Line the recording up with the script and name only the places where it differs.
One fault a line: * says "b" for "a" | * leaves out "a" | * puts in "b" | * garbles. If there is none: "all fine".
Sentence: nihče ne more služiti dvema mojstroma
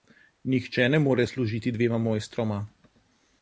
all fine